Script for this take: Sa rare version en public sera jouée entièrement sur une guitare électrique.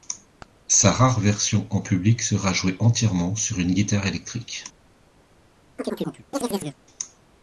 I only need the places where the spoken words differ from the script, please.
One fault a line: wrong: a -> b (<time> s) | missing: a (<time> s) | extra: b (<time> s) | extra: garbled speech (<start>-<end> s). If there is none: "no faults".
no faults